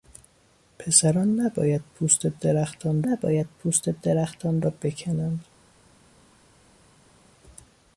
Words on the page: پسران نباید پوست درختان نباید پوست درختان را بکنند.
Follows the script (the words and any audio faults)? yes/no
yes